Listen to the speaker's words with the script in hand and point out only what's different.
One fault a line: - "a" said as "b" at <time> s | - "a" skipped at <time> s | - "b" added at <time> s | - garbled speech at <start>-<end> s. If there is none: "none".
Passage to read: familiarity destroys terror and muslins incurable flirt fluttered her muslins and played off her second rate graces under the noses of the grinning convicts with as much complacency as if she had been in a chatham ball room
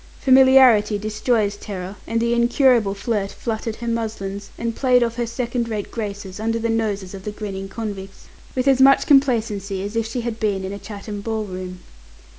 - "muslins" said as "the" at 2.2 s